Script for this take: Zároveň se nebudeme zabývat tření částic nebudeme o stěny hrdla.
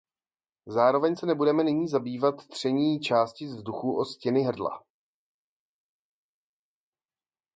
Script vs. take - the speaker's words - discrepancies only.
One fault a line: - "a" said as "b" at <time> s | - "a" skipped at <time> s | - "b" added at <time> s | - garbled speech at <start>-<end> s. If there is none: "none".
- "nyní" added at 1.6 s
- "nebudeme" said as "vzduchu" at 3.5 s